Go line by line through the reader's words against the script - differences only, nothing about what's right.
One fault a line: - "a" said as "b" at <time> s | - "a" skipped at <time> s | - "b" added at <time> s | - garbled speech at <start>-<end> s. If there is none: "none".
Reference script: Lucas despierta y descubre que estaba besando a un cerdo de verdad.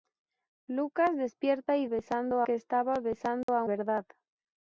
- "descubre" said as "besando" at 1.9 s
- "un cerdo de" skipped at 3.6 s